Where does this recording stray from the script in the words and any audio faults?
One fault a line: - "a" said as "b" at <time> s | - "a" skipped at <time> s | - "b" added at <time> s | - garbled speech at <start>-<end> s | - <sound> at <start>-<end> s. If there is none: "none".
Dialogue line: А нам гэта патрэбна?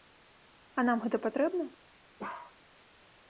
- bark at 2.2-2.6 s